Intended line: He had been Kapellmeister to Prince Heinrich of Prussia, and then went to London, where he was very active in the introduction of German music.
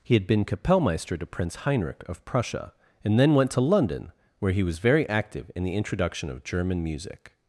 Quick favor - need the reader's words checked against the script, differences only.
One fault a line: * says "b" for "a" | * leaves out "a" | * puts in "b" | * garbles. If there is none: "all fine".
all fine